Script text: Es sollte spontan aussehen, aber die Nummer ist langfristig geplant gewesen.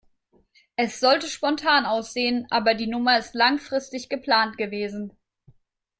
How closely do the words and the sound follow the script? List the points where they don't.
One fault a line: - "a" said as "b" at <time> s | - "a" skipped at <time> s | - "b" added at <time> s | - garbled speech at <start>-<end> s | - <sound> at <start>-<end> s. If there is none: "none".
none